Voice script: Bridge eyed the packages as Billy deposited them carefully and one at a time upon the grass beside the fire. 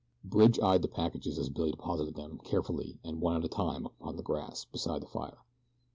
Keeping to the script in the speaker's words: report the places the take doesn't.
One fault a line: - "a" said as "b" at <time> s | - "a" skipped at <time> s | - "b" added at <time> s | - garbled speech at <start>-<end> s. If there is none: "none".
none